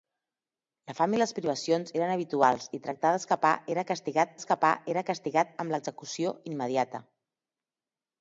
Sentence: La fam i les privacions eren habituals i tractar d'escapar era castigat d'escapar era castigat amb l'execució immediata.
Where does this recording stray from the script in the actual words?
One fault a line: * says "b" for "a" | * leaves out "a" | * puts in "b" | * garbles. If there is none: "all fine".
all fine